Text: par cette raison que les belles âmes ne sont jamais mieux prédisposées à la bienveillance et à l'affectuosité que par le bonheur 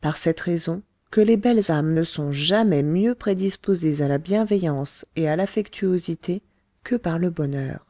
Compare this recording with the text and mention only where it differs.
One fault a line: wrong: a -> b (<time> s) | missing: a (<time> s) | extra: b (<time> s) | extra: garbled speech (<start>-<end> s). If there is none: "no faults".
no faults